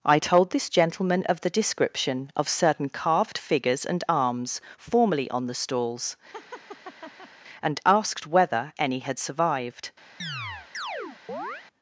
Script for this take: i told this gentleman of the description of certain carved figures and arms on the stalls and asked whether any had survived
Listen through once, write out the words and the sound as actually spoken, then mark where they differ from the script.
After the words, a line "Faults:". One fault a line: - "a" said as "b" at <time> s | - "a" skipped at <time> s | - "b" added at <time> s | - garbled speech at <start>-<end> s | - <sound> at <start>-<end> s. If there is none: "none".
i told this gentleman of the description of certain carved figures and arms formerly on the stalls and asked whether any had survived
Faults:
- "formerly" added at 4.8 s
- laugh at 6.3-7.3 s
- chirp at 10.2-11.7 s